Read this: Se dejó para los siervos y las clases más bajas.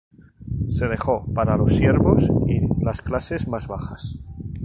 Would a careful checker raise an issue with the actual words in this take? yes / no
no